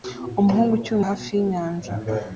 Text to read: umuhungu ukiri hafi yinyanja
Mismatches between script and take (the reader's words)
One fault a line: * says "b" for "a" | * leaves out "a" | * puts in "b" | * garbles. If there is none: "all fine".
all fine